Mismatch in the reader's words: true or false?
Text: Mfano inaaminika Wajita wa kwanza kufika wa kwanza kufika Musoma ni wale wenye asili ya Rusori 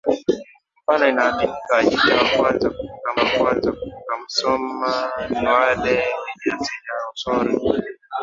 false